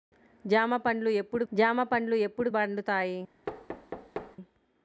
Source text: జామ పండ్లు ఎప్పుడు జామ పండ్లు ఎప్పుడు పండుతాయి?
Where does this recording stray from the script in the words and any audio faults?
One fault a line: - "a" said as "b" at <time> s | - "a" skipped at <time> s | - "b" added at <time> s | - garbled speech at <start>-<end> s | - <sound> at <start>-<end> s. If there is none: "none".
- thud at 3.5-4.4 s